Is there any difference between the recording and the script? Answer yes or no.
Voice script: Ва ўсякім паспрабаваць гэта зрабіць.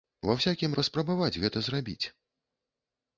no